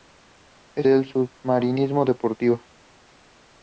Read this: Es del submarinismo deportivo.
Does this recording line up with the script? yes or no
yes